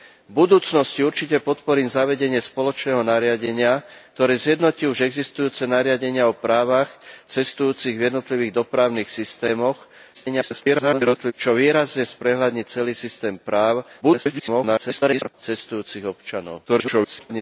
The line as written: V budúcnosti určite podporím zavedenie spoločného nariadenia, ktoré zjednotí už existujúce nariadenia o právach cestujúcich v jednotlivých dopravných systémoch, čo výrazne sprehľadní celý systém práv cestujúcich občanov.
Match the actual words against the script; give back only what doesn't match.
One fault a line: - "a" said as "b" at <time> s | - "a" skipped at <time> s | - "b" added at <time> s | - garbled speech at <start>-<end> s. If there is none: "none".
- garbled speech at 10.1-11.3 s
- garbled speech at 14.0-15.3 s
- garbled speech at 16.7-17.4 s